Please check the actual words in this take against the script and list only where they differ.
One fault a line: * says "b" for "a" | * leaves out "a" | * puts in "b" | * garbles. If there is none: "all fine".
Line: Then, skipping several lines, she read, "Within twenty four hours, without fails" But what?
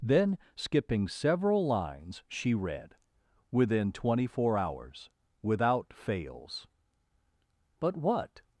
all fine